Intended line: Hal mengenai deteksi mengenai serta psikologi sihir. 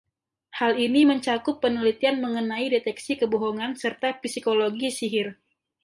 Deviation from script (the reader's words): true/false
true